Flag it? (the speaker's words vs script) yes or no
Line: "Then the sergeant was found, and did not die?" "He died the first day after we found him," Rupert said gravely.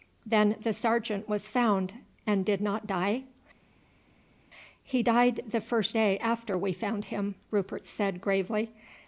no